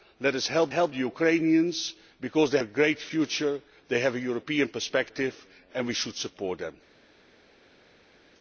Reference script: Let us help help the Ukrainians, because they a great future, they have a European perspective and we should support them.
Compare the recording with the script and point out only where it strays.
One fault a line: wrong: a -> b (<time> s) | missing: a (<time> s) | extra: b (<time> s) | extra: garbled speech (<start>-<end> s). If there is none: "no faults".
no faults